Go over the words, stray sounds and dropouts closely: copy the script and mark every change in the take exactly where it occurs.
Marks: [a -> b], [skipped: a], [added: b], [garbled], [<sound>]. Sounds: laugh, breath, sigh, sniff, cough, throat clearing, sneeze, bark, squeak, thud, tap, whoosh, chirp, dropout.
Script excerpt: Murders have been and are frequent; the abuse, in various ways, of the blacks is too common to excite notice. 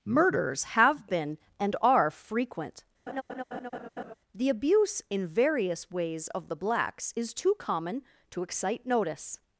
Murders have been and are frequent; [laugh] the abuse, in various ways, of the blacks is too common to excite notice.